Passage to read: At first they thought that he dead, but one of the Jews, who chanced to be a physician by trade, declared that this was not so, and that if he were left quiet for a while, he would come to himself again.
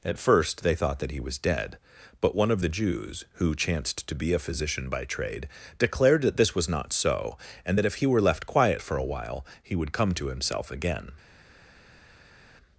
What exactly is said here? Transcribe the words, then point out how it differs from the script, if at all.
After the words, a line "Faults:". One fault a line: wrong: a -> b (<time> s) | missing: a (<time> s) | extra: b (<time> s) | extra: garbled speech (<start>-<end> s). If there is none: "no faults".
At first they thought that he was dead, but one of the Jews, who chanced to be a physician by trade, declared that this was not so, and that if he were left quiet for a while, he would come to himself again.
Faults:
extra: was (1.2 s)